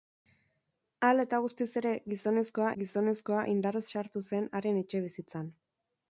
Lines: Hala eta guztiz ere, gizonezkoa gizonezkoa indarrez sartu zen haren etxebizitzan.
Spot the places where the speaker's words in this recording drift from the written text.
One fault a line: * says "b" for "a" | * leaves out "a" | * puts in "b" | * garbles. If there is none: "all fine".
all fine